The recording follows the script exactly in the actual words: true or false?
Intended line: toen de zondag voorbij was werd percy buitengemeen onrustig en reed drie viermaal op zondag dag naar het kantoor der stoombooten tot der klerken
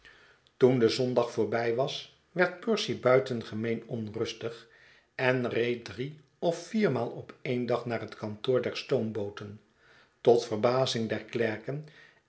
false